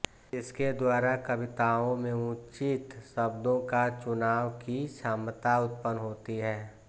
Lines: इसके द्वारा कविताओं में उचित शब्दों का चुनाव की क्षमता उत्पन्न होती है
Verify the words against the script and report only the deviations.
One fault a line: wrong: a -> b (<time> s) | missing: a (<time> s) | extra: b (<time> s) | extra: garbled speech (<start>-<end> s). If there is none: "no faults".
no faults